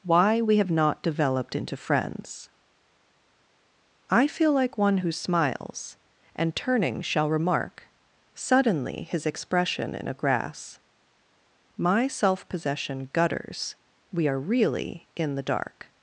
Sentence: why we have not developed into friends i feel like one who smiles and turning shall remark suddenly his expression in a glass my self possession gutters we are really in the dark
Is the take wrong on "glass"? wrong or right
wrong